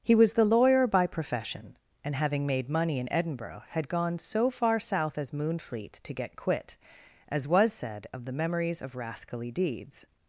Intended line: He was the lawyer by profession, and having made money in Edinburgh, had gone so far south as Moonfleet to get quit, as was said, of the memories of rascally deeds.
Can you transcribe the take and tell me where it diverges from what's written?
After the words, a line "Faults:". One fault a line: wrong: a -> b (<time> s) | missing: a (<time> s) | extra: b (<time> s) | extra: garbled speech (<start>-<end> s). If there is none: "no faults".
He was the lawyer by profession, and having made money in Edinburgh, had gone so far south as Moonfleet to get quit, as was said, of the memories of rascally deeds.
Faults:
no faults